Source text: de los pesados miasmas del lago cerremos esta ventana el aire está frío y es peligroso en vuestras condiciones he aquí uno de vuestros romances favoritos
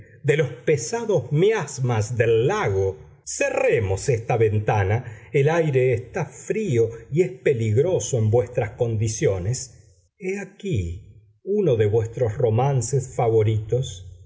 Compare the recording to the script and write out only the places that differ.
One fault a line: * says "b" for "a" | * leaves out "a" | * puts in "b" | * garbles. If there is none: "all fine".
all fine